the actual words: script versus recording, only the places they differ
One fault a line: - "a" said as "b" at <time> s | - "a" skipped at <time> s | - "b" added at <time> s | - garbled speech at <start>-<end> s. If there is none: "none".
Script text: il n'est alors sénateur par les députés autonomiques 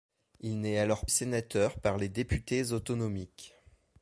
none